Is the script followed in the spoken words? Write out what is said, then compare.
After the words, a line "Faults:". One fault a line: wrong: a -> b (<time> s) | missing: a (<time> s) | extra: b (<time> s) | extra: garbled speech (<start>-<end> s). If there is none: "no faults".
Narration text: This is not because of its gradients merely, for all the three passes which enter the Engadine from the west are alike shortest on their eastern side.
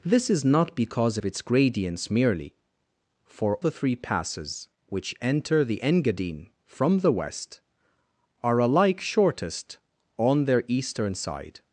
This is not because of its gradients merely, for the three passes which enter the Engadine from the west are alike shortest on their eastern side.
Faults:
missing: all (3.6 s)